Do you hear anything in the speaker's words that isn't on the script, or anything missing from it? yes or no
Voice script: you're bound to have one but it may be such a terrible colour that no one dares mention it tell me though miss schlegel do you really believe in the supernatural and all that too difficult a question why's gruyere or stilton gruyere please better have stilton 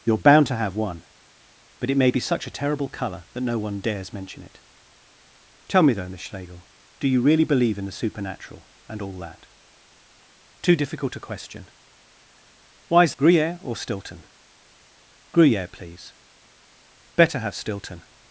no